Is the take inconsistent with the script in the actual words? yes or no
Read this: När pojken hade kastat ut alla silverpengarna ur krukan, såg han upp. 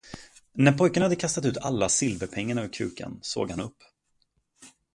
no